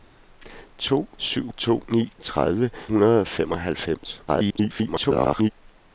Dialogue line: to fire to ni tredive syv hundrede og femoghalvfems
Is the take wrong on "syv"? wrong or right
wrong